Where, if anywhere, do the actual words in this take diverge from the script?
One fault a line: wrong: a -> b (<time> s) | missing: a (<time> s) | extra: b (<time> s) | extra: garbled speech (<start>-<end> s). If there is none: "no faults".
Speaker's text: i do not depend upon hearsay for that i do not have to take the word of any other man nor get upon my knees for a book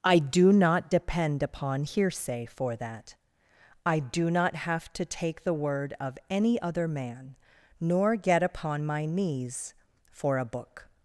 no faults